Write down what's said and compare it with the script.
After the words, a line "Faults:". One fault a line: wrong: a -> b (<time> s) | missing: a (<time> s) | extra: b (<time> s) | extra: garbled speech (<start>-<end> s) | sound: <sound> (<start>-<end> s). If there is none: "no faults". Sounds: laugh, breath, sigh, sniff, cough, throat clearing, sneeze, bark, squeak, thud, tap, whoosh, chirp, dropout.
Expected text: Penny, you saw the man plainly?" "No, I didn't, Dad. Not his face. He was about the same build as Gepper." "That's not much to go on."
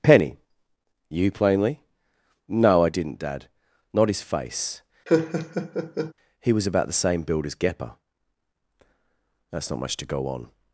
Penny, you plainly?" "No, I didn't, Dad. Not his face. He was about the same build as Gepper." "That's not much to go on."
Faults:
missing: saw the man (1.3 s)
sound: laugh (5.1-6.1 s)